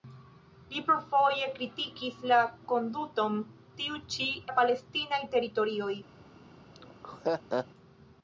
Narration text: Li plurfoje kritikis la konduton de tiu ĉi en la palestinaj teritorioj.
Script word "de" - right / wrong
wrong